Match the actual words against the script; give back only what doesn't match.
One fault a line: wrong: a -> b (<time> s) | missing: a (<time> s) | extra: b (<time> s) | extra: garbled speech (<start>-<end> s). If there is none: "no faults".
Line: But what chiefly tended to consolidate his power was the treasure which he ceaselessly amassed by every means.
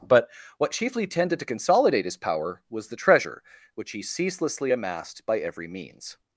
no faults